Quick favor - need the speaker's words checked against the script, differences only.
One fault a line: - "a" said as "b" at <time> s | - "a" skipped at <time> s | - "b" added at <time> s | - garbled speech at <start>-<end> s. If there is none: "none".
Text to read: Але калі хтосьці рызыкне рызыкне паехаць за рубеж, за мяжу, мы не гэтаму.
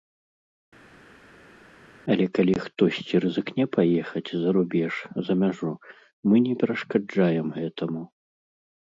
- "рызыкне" skipped at 3.6 s
- "перашкаджаем" added at 6.6 s